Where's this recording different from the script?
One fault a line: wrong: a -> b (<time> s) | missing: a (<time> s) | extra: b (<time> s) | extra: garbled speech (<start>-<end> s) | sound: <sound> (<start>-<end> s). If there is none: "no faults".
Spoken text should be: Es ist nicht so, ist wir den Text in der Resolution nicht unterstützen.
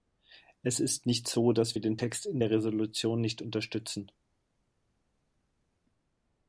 wrong: ist -> dass (1.5 s)